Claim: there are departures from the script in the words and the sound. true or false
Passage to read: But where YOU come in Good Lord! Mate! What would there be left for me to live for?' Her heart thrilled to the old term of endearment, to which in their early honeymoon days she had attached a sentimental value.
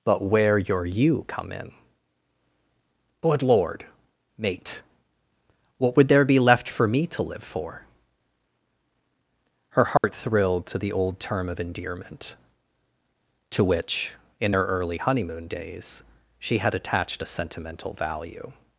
true